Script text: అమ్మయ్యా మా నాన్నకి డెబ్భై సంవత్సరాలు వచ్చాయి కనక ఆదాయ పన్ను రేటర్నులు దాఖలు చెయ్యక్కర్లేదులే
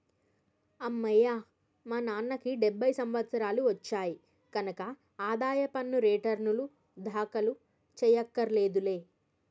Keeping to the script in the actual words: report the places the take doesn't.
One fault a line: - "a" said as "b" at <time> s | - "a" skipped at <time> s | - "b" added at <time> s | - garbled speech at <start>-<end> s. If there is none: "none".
none